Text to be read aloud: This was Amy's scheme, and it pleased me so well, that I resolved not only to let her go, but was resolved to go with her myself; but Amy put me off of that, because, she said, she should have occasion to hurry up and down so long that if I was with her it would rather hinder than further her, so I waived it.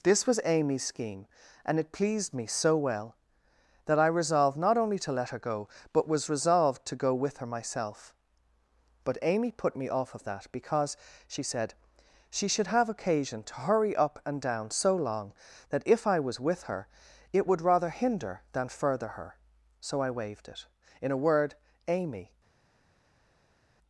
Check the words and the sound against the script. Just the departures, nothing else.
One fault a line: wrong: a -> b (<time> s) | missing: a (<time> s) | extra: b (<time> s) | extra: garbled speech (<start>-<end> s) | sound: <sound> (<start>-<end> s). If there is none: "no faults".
extra: In a word Amy (21.0 s)